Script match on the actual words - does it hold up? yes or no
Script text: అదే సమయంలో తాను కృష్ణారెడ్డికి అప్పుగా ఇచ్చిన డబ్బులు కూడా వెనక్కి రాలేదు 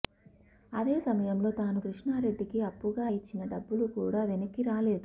yes